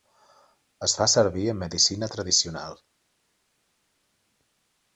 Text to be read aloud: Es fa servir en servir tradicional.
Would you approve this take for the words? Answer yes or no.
no